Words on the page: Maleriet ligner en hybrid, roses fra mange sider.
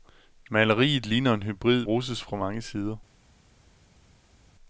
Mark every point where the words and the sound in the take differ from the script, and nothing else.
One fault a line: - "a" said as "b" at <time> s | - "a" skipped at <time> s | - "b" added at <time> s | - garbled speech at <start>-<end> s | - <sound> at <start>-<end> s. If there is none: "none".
none